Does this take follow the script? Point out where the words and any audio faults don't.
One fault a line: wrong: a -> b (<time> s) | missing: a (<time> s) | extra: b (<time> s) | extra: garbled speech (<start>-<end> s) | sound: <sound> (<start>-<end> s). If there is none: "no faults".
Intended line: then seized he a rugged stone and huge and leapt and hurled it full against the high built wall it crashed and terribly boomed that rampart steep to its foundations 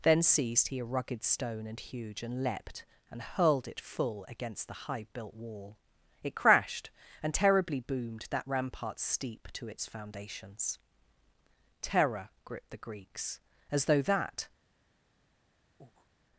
extra: terror gripped the greeks as though that (11.8 s)
sound: breath (15.8-16.1 s)